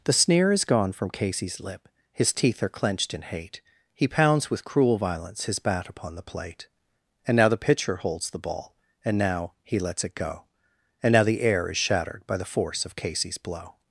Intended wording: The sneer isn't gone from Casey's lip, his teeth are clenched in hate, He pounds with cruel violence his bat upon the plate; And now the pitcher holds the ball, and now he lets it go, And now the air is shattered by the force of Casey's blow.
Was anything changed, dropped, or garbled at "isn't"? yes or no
yes